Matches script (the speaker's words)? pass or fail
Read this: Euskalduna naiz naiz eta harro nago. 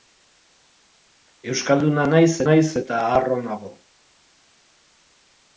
pass